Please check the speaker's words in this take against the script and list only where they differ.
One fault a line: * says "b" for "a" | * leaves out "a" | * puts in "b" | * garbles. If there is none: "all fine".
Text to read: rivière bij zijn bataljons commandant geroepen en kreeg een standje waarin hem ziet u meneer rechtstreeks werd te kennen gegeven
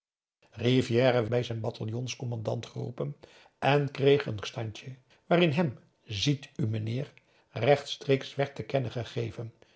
all fine